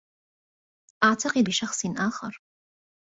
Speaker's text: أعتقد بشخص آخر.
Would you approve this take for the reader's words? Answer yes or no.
yes